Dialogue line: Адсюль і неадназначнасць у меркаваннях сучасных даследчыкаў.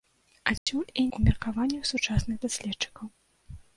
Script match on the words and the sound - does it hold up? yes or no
no